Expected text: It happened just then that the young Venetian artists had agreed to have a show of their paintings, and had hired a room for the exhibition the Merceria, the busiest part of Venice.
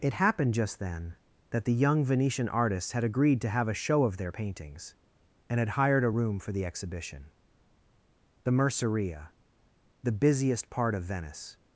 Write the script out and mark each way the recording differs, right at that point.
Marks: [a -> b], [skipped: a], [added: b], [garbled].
It happened just then that the young Venetian artists had agreed to have a show of their paintings, and had hired a room for the exhibition the Merceria, the busiest part of Venice.